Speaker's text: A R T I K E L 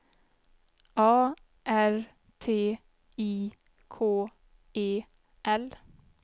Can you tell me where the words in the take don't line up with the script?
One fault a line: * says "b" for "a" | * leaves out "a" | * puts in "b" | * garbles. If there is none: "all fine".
all fine